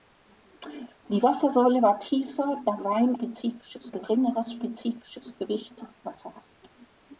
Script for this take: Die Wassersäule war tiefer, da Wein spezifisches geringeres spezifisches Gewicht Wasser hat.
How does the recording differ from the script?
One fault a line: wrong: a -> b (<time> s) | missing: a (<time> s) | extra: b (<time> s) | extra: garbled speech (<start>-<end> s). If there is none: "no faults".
no faults